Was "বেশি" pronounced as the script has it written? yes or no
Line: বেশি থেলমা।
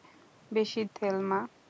yes